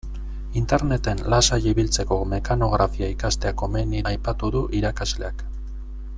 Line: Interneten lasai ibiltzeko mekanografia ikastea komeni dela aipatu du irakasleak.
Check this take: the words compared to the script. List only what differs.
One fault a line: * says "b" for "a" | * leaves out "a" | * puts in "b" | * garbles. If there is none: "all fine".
* leaves out "dela"